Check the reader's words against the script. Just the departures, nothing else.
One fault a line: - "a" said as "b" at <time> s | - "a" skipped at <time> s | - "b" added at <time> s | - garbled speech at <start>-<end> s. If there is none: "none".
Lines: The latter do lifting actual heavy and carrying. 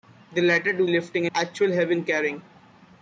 none